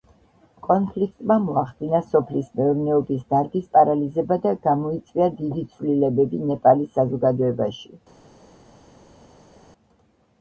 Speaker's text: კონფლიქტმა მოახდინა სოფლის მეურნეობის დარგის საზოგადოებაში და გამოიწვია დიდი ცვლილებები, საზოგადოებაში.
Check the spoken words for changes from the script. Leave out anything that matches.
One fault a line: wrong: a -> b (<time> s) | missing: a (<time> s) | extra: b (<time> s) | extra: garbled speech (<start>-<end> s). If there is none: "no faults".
wrong: საზოგადოებაში -> პარალიზება (3.8 s)
extra: ნეპალის (6.5 s)